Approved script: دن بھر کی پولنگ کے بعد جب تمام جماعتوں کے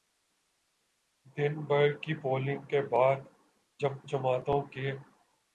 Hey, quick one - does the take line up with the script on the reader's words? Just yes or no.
no